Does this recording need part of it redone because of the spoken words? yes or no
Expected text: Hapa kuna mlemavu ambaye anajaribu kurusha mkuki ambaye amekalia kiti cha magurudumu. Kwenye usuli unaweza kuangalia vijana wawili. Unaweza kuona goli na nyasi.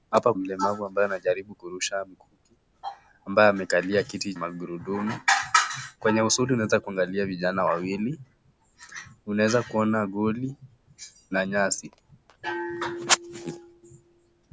yes